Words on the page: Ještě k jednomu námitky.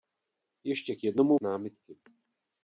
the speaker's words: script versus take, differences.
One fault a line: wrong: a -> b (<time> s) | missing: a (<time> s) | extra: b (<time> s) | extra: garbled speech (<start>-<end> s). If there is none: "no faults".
no faults